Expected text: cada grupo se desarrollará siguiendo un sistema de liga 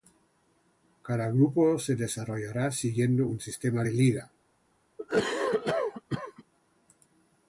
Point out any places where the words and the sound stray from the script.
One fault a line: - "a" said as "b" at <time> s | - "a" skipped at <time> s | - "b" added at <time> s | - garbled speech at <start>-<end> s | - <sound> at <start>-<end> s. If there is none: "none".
- cough at 5.0-6.4 s